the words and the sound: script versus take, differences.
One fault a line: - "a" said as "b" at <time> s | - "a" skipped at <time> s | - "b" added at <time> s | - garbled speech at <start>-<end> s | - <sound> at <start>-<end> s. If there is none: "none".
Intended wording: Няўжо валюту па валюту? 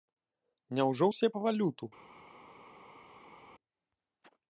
- "валюту" said as "ўсе" at 1.1 s